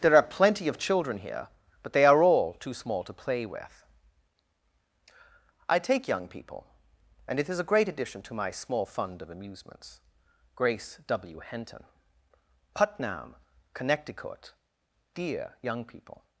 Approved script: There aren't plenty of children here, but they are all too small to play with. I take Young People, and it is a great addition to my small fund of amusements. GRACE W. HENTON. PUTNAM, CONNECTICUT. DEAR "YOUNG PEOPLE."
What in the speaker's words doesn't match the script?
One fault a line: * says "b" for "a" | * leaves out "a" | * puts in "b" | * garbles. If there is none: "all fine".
* says "are" for "aren't"